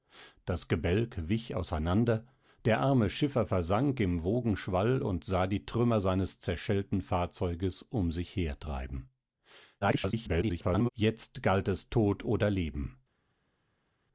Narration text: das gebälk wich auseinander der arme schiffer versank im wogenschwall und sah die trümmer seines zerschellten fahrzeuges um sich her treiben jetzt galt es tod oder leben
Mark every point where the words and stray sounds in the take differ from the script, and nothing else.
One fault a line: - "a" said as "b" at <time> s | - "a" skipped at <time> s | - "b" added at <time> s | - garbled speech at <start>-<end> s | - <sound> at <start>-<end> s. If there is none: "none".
- garbled speech at 9.8-10.9 s